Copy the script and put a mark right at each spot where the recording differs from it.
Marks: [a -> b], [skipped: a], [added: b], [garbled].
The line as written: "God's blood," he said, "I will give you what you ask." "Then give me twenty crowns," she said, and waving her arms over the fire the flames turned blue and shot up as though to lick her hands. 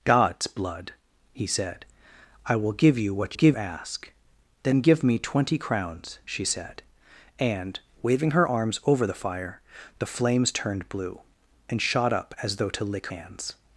"God's blood," he said, "I will give you what [you -> give] ask." "Then give me twenty crowns," she said, and waving her arms over the fire the flames turned blue and shot up as though to lick [skipped: her] hands.